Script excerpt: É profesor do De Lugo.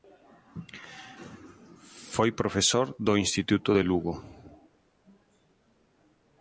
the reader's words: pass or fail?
fail